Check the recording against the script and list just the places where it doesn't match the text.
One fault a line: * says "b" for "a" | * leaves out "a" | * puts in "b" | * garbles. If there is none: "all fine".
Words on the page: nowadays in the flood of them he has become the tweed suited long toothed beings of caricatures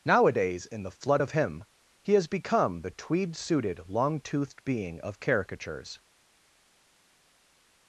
* says "him" for "them"
* says "being" for "beings"